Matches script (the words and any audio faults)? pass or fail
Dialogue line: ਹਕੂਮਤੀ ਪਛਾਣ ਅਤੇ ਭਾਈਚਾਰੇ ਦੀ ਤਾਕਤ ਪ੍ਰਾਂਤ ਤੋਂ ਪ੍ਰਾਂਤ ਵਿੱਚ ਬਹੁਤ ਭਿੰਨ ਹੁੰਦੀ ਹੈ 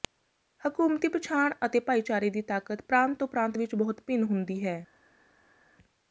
pass